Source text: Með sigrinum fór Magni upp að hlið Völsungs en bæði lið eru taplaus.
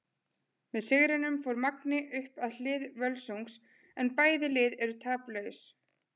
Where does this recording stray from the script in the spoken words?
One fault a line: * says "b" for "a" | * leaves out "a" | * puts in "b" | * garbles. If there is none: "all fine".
all fine